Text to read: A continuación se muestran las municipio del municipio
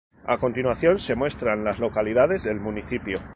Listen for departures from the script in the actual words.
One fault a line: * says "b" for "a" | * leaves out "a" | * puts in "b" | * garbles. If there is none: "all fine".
* says "localidades" for "municipio"